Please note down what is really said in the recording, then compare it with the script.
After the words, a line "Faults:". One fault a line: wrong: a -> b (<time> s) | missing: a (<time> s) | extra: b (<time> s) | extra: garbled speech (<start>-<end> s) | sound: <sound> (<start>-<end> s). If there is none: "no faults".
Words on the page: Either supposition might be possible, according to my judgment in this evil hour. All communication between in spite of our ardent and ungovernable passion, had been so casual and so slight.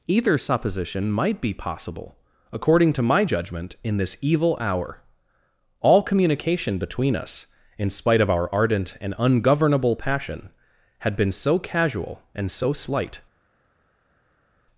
Either supposition might be possible, according to my judgment in this evil hour. All communication between us, in spite of our ardent and ungovernable passion, had been so casual and so slight.
Faults:
extra: us (7.1 s)